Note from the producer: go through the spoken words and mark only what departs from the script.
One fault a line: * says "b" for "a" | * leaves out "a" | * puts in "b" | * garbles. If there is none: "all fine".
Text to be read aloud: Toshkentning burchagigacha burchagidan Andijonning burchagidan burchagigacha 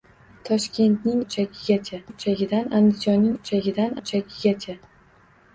all fine